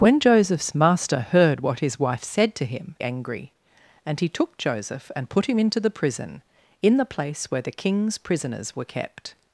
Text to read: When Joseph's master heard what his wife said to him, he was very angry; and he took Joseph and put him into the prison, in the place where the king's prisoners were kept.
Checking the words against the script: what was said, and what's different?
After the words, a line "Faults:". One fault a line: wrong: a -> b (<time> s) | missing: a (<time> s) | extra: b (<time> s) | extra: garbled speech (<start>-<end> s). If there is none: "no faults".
When Joseph's master heard what his wife said to him, angry; and he took Joseph and put him into the prison, in the place where the king's prisoners were kept.
Faults:
missing: he was very (3.0 s)